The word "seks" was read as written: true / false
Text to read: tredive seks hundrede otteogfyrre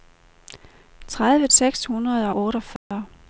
true